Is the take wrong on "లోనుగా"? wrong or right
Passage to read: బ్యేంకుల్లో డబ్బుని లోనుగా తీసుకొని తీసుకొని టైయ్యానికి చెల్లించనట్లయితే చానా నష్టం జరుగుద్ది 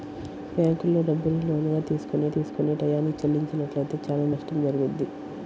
right